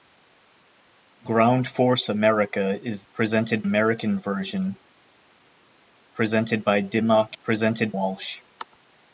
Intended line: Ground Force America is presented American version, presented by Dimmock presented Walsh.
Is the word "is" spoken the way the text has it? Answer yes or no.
yes